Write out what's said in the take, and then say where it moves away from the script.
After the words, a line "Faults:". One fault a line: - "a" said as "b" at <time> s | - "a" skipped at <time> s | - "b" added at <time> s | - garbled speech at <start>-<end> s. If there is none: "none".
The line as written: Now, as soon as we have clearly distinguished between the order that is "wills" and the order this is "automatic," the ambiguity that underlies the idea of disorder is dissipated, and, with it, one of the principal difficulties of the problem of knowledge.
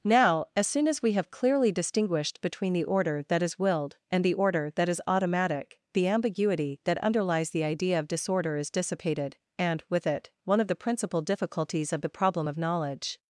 Now, as soon as we have clearly distinguished between the order that is "willed" and the order that is "automatic," the ambiguity that underlies the idea of disorder is dissipated, and, with it, one of the principal difficulties of the problem of knowledge.
Faults:
- "wills" said as "willed" at 3.6 s
- "this" said as "that" at 4.7 s